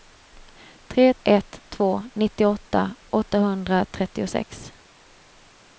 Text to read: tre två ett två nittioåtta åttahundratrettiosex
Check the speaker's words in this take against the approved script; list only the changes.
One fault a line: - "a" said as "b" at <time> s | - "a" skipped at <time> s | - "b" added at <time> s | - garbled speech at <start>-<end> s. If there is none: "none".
- "två" skipped at 1.1 s